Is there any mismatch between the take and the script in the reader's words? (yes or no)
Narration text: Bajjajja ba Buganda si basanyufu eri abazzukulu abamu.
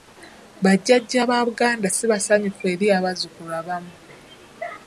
no